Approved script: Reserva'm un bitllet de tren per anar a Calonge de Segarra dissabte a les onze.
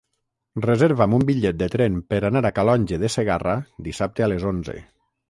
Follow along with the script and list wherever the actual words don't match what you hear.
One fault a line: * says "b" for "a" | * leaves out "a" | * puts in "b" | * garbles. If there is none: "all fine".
all fine